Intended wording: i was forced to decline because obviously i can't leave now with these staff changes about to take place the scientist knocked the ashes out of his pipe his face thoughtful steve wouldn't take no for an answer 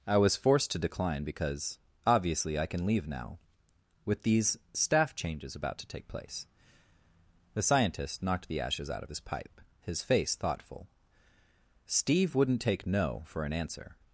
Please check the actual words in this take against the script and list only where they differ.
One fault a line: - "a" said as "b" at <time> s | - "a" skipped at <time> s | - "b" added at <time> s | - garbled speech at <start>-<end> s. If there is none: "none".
- "can't" said as "can" at 2.6 s